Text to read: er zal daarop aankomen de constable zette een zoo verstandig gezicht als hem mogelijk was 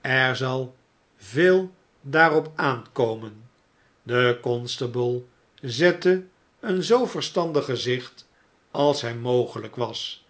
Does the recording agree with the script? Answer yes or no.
no